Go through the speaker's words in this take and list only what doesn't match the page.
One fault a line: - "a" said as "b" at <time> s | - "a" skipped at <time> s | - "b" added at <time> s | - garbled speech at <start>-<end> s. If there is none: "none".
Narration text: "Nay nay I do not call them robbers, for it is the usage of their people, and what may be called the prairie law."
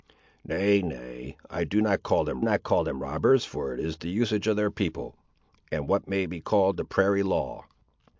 - "not call them" added at 2.4 s